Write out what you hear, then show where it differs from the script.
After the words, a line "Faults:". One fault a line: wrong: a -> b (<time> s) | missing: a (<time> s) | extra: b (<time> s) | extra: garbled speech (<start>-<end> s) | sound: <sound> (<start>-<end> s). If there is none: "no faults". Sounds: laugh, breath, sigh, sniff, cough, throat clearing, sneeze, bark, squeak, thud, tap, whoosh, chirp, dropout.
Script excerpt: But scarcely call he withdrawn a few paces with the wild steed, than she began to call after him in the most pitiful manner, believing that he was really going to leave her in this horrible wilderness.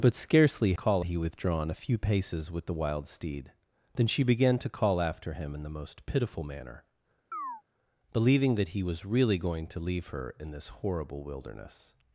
But scarcely call he withdrawn a few paces with the wild steed, than she began to call after him in the most pitiful manner, believing that he was really going to leave her in this horrible wilderness.
Faults:
sound: chirp (7.3-7.6 s)